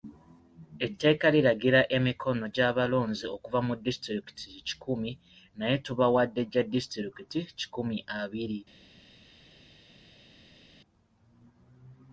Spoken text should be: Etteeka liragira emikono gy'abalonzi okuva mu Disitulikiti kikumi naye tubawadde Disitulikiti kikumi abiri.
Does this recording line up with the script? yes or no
no